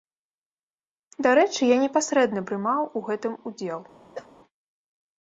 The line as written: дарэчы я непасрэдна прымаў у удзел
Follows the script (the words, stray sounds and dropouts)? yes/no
no